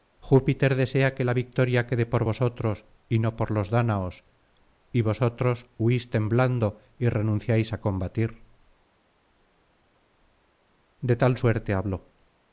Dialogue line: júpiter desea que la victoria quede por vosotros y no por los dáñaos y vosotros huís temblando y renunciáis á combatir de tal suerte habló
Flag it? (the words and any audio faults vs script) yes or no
no